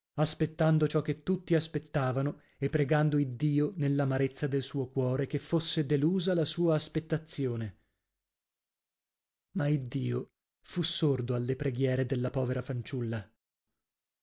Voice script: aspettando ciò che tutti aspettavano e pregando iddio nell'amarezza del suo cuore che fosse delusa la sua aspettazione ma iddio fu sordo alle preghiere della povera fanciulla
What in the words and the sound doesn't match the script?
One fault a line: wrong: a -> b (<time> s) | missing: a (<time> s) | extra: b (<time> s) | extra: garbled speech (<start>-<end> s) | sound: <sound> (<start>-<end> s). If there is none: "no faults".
no faults